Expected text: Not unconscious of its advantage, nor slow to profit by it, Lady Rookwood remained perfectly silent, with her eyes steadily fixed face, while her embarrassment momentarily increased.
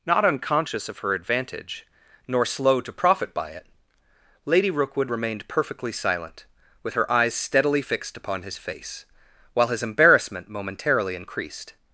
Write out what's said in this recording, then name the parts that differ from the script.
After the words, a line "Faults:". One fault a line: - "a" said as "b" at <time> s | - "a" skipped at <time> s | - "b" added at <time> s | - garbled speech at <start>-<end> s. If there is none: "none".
Not unconscious of her advantage, nor slow to profit by it, Lady Rookwood remained perfectly silent, with her eyes steadily fixed upon his face, while his embarrassment momentarily increased.
Faults:
- "its" said as "her" at 1.0 s
- "upon his" added at 8.2 s
- "her" said as "his" at 9.7 s